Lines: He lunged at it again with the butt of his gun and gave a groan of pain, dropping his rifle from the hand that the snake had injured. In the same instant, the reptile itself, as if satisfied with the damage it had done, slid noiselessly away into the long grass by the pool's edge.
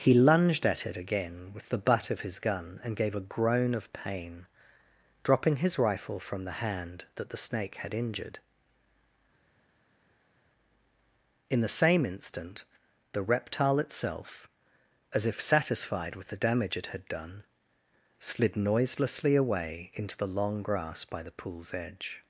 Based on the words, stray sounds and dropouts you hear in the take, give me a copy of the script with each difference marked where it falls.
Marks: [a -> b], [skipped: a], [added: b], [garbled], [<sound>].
He lunged at it again with the butt of his gun and gave a groan of pain, dropping his rifle from the hand that the snake had injured. In the same instant, the reptile itself, as if satisfied with the damage it had done, slid noiselessly away into the long grass by the pool's edge.